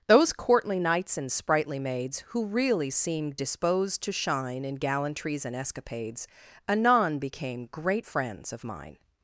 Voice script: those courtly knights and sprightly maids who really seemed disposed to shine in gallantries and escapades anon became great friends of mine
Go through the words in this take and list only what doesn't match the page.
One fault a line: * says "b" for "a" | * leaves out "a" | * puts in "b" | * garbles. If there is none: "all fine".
all fine